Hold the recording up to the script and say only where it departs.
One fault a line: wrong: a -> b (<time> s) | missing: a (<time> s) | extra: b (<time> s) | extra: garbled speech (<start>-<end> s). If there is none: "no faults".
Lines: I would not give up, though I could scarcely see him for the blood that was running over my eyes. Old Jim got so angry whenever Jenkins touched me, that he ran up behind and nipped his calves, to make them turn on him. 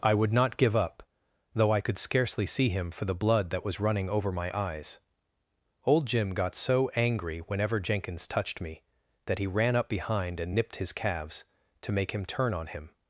wrong: them -> him (12.1 s)